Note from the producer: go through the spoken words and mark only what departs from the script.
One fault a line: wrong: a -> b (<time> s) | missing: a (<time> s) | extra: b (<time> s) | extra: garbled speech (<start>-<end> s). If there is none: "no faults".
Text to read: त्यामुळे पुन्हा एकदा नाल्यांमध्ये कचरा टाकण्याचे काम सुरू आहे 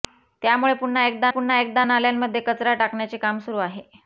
extra: पुन्हा एकदा (1.3 s)